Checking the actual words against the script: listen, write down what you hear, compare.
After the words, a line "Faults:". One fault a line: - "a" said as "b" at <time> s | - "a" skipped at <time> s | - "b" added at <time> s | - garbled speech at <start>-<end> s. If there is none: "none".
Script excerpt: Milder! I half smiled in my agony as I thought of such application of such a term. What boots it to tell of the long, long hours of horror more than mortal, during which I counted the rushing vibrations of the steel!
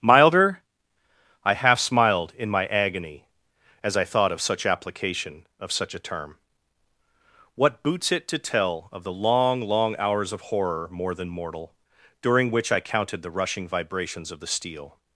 Milder! I half smiled in my agony as I thought of such application of such a term. What boots it to tell of the long, long hours of horror more than mortal, during which I counted the rushing vibrations of the steel!
Faults:
none